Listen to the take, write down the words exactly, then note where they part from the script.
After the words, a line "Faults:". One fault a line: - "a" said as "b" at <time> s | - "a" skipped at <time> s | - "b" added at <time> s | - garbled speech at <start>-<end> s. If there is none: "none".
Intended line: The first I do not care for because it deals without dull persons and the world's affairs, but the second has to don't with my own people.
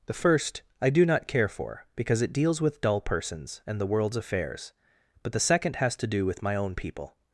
The first I do not care for because it deals with dull persons and the world's affairs, but the second has to do with my own people.
Faults:
- "without" said as "with" at 2.6 s
- "don't" said as "do" at 6.1 s